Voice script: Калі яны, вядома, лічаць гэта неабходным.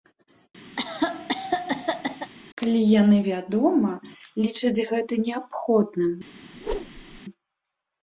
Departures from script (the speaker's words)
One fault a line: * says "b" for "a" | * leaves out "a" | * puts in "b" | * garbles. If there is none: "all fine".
all fine